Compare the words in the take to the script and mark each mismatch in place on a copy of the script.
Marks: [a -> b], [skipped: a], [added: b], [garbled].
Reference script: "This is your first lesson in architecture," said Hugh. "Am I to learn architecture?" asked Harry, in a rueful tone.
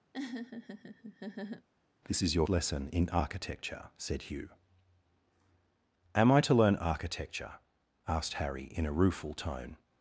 "This is your [skipped: first] lesson in architecture," said Hugh. "Am I to learn architecture?" asked Harry, in a rueful tone.